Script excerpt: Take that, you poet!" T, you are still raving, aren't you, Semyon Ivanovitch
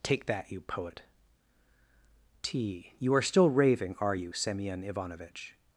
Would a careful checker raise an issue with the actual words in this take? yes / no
yes